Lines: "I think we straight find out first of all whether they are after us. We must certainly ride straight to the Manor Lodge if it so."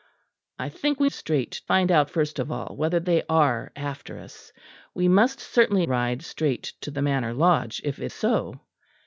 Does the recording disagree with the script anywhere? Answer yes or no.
no